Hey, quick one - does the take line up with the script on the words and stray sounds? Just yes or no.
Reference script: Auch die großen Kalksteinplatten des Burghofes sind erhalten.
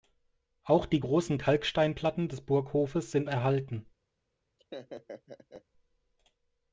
no